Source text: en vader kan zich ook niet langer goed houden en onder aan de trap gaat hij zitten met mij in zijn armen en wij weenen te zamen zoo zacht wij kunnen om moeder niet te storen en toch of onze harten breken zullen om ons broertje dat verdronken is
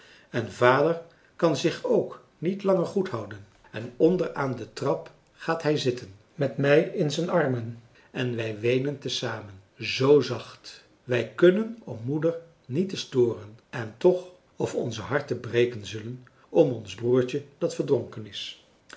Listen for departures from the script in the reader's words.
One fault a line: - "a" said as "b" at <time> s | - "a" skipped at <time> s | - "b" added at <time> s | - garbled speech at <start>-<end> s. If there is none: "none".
none